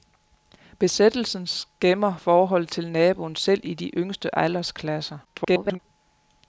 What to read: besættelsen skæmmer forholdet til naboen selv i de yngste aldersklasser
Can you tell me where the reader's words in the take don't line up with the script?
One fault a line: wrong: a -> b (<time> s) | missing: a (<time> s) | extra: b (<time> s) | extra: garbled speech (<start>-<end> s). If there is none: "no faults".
extra: garbled speech (5.2-5.8 s)